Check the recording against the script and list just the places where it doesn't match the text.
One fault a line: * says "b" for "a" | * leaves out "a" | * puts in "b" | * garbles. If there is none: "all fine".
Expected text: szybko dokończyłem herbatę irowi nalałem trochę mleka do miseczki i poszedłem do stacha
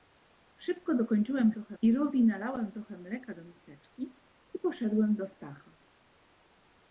* says "trochę" for "herbatę"